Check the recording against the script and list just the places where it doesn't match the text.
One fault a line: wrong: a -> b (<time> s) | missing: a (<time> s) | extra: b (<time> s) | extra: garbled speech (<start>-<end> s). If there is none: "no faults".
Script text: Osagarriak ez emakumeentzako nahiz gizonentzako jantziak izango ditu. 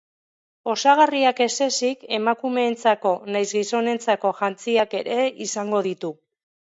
extra: ezik (1.6 s)
extra: ere (5.0 s)